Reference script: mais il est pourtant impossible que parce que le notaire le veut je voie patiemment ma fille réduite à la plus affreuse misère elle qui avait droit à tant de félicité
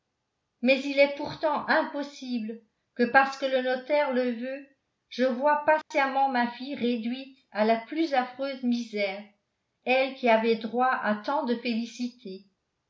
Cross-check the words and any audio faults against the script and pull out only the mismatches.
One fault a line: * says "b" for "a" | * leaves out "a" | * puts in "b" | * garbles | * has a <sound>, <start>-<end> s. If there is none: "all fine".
* has a dropout, 5.8-5.9 s